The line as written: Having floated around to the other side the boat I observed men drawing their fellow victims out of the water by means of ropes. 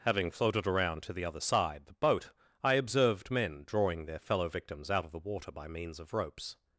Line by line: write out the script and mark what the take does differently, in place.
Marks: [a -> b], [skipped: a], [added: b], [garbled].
Having floated around to the other side the boat I observed men drawing their fellow victims out of the water by means of ropes.